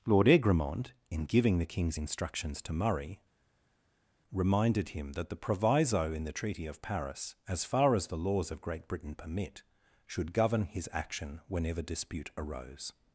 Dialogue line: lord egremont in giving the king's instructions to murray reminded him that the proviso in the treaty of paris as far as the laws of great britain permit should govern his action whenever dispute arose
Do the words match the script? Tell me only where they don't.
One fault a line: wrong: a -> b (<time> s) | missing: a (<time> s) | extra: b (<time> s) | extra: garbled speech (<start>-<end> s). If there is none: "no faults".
no faults